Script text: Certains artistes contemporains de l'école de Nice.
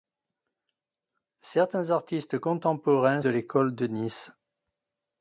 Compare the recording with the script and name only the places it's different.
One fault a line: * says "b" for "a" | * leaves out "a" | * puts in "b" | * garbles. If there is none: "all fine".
all fine